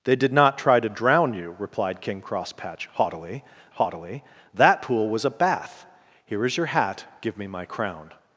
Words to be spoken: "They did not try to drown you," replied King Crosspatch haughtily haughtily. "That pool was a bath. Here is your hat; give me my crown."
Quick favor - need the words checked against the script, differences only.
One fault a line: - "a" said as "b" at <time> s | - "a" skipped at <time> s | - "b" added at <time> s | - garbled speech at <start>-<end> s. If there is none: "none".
none